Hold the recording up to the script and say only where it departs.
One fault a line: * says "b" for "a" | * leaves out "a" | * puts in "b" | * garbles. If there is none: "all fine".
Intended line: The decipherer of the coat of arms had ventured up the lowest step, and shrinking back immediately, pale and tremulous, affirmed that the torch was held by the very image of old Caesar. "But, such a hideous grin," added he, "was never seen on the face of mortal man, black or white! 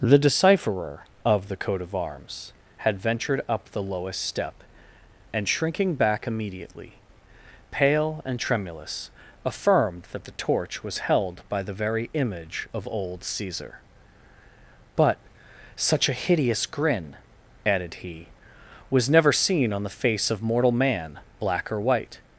all fine